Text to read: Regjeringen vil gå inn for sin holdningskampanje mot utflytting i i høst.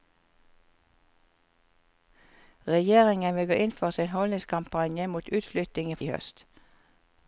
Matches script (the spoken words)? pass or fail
pass